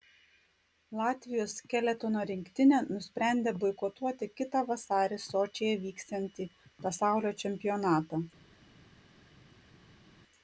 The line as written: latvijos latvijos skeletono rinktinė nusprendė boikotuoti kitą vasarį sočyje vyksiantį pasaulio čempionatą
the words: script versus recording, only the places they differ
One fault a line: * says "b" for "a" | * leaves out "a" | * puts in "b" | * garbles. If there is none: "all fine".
* leaves out "latvijos"